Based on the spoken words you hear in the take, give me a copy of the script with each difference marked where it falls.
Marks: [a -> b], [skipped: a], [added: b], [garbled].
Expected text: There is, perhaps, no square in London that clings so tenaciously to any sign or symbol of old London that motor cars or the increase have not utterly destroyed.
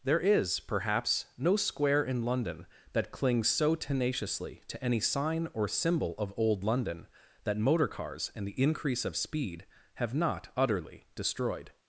There is, perhaps, no square in London that clings so tenaciously to any sign or symbol of old London that motor cars [or -> and] the increase [added: of speed] have not utterly destroyed.